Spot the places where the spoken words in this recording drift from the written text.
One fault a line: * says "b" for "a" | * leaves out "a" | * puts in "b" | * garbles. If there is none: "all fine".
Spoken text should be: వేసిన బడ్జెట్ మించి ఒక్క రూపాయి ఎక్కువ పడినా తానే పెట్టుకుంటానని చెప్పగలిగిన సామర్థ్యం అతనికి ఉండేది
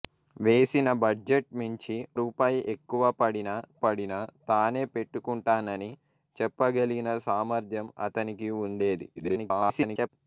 * leaves out "ఒక్క"
* puts in "పడినా"
* garbles